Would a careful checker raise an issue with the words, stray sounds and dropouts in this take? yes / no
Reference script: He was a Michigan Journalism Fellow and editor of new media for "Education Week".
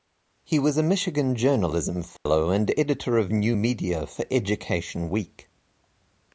yes